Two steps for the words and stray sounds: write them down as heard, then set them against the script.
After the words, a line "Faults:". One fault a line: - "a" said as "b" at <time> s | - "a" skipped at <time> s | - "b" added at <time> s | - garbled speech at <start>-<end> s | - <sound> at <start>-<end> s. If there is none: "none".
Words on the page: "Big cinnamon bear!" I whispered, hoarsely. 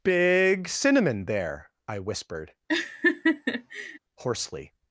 "Big cinnamon there!" I whispered, hoarsely.
Faults:
- "bear" said as "there" at 1.2 s
- laugh at 2.7-4.0 s